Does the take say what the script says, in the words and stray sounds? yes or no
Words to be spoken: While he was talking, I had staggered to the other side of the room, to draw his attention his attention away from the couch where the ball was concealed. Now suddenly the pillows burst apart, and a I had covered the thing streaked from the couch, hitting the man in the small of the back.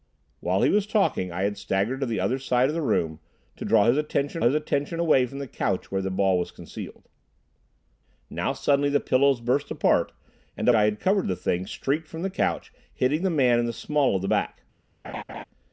no